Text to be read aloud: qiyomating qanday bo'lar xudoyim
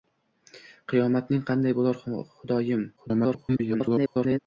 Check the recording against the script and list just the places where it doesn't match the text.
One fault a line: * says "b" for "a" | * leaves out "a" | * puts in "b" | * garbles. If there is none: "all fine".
* garbles